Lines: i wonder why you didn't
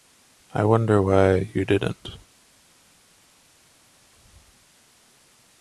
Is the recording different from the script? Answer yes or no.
no